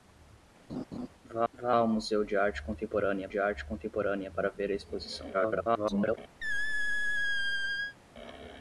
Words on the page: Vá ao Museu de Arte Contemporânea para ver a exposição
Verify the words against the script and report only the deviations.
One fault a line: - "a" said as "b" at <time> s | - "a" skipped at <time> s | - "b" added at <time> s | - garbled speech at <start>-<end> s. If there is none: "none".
- "vá" added at 1.5 s
- "de Arte Contemporânea" added at 3.3 s
- garbled speech at 5.3-6.2 s